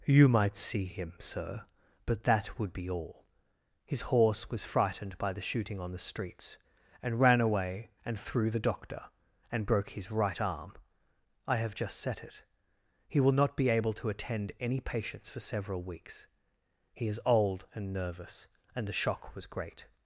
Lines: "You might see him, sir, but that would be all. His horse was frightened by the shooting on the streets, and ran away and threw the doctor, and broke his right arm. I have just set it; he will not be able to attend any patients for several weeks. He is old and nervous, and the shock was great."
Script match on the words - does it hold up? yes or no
yes